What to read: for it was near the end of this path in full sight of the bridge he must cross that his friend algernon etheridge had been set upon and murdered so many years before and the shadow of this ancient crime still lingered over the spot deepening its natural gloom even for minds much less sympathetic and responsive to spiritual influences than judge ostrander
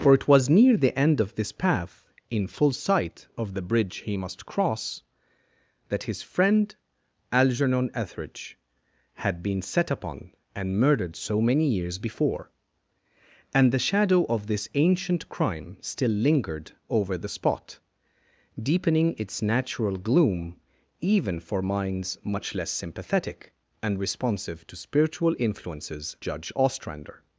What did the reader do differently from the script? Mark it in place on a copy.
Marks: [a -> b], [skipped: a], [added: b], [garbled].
for it was near the end of this path in full sight of the bridge he must cross that his friend algernon etheridge had been set upon and murdered so many years before and the shadow of this ancient crime still lingered over the spot deepening its natural gloom even for minds much less sympathetic and responsive to spiritual influences [skipped: than] judge ostrander